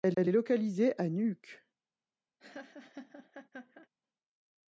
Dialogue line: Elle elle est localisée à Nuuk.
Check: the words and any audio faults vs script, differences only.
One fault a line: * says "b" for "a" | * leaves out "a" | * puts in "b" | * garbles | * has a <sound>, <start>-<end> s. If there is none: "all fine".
* has a laugh, 2.4-3.9 s